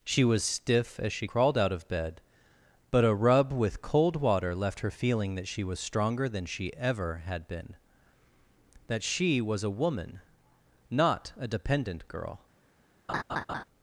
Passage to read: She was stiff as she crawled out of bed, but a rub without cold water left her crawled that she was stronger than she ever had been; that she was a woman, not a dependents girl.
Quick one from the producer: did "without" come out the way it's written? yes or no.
no